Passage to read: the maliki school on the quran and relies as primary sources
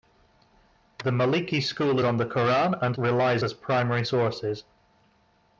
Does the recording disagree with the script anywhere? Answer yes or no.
no